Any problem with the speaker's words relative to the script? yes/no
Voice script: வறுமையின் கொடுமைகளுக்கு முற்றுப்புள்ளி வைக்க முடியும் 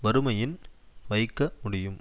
yes